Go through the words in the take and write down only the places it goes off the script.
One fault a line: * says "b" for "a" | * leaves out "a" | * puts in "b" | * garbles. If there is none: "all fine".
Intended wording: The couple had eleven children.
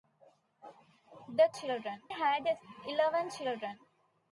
* says "children" for "couple"